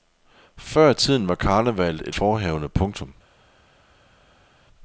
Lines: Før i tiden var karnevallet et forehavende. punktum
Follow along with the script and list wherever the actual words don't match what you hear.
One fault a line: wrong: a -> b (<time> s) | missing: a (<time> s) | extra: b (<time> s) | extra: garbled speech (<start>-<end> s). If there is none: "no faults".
no faults